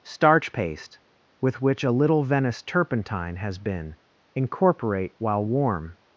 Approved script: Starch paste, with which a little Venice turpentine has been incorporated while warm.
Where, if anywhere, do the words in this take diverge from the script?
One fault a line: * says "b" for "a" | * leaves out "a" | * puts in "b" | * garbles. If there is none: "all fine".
* says "incorporate" for "incorporated"